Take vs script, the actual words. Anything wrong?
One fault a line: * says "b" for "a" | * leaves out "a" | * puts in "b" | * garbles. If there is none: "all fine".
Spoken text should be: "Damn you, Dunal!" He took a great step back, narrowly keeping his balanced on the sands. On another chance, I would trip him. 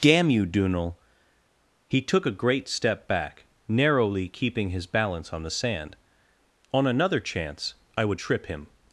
* says "balance" for "balanced"
* says "sand" for "sands"